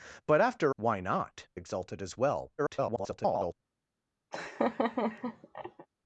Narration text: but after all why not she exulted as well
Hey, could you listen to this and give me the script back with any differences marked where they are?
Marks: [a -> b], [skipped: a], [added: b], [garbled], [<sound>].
but after [skipped: all] why not [skipped: she] exulted as well [garbled] [laugh]